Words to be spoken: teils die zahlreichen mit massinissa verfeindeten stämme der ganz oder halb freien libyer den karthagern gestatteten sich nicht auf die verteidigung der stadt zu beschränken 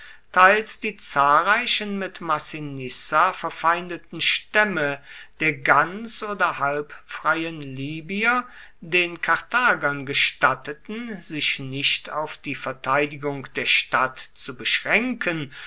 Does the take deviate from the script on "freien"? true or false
false